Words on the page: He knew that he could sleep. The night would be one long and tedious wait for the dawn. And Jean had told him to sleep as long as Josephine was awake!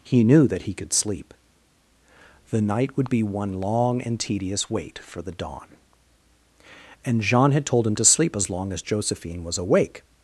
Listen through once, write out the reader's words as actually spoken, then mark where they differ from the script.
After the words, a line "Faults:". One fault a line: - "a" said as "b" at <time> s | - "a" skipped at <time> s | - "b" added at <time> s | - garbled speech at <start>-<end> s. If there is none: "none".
He knew that he could sleep. The night would be one long and tedious wait for the dawn. And Jean had told him to sleep as long as Josephine was awake!
Faults:
none